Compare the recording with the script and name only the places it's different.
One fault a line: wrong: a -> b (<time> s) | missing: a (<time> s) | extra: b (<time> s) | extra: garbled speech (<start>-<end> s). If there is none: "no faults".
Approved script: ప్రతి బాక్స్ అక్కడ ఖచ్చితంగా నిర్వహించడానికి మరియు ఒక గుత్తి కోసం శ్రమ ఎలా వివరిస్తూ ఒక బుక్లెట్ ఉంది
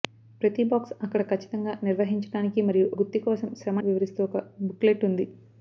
missing: ఒక (2.9 s)
missing: ఎలా (3.8 s)